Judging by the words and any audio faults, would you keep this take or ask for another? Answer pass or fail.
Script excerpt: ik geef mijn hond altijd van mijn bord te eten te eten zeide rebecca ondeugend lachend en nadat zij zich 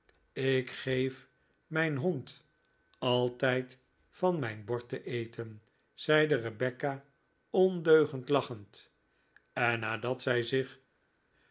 fail